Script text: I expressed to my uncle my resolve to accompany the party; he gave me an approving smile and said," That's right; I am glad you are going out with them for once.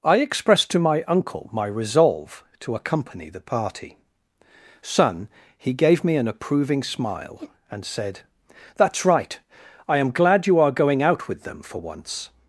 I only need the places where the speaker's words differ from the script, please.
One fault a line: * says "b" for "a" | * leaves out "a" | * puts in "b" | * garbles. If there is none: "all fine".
* puts in "son"